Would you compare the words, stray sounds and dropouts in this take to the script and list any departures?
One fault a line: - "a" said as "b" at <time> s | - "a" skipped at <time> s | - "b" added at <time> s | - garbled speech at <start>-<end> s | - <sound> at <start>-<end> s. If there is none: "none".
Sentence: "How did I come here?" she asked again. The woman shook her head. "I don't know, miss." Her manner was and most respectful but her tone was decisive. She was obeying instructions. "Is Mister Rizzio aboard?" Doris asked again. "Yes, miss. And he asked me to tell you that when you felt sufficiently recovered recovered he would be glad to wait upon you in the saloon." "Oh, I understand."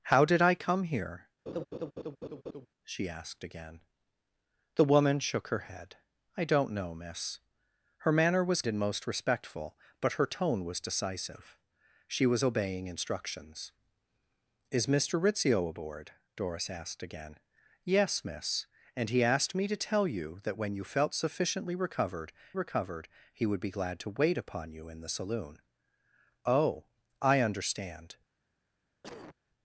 - laugh at 1.5-2.7 s
- cough at 29.0-29.4 s